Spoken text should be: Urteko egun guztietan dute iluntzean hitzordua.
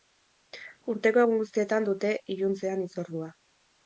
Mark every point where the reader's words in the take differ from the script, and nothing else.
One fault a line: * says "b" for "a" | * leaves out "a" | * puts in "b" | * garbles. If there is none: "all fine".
all fine